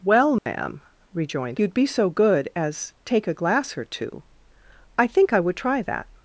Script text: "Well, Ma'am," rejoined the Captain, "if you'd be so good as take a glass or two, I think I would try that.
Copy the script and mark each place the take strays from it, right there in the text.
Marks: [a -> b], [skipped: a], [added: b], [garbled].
"Well, Ma'am," rejoined [skipped: the Captain, "if] you'd be so good as take a glass or two, I think I would try that.